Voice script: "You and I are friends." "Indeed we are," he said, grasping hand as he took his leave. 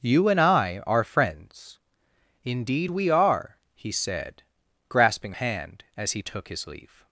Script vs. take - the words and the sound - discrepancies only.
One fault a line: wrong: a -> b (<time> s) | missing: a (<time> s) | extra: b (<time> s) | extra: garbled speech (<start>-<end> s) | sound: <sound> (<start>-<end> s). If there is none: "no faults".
no faults